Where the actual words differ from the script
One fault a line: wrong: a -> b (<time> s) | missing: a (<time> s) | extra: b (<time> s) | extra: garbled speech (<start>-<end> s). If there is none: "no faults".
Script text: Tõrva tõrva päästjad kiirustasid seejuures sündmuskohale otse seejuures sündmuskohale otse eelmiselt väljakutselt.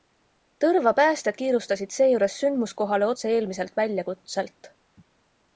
missing: tõrva (0.9 s)
missing: seejuures sündmuskohale otse (3.3 s)